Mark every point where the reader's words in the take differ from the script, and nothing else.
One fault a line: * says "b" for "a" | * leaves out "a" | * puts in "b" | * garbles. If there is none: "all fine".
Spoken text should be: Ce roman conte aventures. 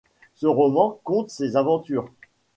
* puts in "ses"